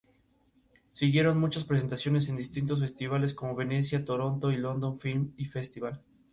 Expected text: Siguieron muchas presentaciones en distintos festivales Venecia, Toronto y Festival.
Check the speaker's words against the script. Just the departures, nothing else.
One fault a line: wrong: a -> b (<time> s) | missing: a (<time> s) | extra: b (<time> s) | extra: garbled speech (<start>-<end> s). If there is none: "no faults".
extra: como (3.4 s)
extra: London Film (4.6 s)